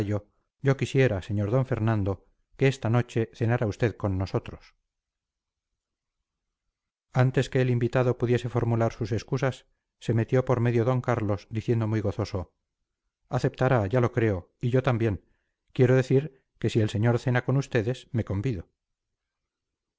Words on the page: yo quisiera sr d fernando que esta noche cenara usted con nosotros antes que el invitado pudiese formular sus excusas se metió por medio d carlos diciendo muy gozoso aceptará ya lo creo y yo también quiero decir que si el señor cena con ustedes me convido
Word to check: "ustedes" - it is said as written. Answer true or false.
true